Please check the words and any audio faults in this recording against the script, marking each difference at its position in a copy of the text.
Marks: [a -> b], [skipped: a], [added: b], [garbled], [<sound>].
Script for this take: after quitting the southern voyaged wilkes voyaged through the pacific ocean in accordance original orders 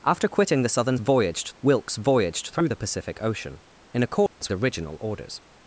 after quitting the southern voyaged wilkes voyaged through the pacific ocean in accordance [dropout] original orders